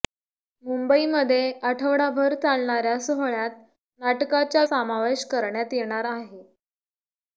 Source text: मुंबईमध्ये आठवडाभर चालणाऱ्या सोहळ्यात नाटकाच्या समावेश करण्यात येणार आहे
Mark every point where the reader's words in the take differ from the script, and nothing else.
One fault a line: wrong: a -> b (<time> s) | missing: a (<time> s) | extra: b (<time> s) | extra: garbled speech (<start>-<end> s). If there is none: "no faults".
no faults